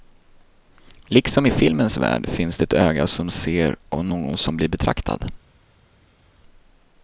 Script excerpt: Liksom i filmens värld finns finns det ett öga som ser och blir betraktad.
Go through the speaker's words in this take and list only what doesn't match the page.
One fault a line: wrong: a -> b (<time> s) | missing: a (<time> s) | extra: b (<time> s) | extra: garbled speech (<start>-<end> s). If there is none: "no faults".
missing: finns (2.6 s)
extra: någon som (4.0 s)